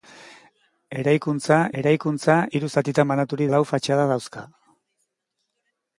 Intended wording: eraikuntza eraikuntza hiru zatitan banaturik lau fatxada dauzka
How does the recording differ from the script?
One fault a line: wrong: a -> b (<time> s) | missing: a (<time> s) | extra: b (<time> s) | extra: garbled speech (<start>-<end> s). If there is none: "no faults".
no faults